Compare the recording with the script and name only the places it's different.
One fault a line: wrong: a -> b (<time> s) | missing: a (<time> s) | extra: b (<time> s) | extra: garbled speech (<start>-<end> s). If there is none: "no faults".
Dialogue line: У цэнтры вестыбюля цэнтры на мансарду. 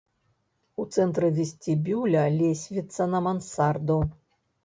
wrong: цэнтры -> лесвіца (2.4 s)